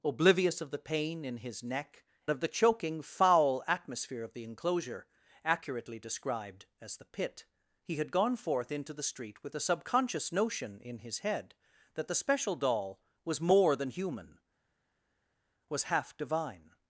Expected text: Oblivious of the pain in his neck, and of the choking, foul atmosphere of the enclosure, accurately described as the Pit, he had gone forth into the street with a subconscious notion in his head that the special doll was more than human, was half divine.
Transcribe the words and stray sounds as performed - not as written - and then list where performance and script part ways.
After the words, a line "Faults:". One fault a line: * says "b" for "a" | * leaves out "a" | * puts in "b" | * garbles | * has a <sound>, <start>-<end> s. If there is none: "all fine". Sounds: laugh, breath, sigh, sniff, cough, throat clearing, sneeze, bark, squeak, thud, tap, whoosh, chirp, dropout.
Oblivious of the pain in his neck, of the choking, foul atmosphere of the enclosure, accurately described as the Pit, he had gone forth into the street with a subconscious notion in his head that the special doll was more than human, was half divine.
Faults:
* leaves out "and"